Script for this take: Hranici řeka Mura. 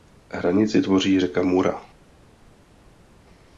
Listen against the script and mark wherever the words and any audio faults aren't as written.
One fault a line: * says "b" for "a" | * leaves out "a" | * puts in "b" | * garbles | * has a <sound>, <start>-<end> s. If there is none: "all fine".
* puts in "tvoří"